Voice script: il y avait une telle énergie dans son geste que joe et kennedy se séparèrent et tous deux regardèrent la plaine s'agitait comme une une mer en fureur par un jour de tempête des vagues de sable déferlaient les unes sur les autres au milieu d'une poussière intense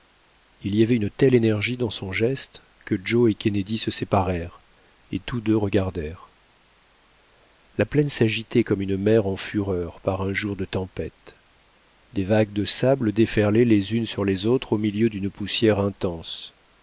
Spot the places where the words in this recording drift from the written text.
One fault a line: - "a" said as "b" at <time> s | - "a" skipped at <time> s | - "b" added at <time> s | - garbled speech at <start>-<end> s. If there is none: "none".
- "une" skipped at 9.0 s